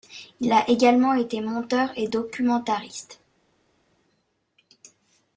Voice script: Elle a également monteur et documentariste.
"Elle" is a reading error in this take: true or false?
true